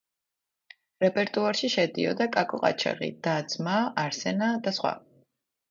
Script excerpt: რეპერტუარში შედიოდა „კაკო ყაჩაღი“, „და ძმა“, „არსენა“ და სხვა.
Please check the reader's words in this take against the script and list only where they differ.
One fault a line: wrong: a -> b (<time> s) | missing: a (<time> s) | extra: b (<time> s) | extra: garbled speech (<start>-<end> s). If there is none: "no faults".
no faults